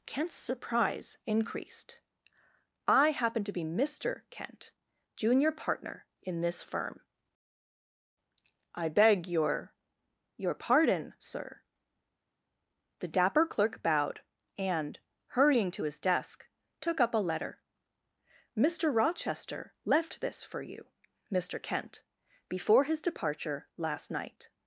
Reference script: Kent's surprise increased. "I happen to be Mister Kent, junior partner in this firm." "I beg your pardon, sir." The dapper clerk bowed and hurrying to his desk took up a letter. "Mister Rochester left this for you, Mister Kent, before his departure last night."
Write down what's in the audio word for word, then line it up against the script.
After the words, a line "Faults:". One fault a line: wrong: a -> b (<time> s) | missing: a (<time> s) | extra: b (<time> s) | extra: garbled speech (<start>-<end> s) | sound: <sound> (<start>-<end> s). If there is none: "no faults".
Kent's surprise increased. "I happen to be Mister Kent, junior partner in this firm." "I beg your your pardon, sir." The dapper clerk bowed and hurrying to his desk took up a letter. "Mister Rochester left this for you, Mister Kent, before his departure last night."
Faults:
extra: your (10.4 s)